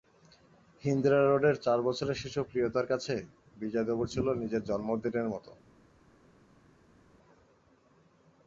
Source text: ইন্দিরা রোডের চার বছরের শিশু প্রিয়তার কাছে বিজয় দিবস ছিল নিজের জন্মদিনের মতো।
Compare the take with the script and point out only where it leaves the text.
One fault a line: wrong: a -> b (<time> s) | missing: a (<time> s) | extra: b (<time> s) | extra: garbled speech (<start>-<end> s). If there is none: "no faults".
no faults